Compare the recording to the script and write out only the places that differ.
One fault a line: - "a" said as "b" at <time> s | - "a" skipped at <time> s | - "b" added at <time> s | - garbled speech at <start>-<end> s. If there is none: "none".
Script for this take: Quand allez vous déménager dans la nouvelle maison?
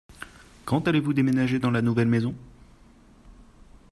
none